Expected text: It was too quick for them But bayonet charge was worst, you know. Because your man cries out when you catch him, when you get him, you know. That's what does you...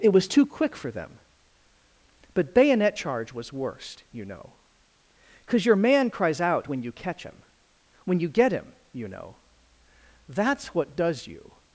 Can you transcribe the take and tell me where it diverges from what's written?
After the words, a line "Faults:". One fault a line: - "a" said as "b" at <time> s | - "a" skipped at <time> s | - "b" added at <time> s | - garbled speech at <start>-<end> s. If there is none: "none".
It was too quick for them But bayonet charge was worst, you know. Because your man cries out when you catch him, when you get him, you know. That's what does you...
Faults:
none